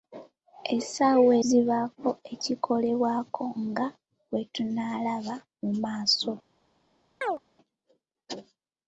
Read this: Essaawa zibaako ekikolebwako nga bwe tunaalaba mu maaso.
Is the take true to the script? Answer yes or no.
yes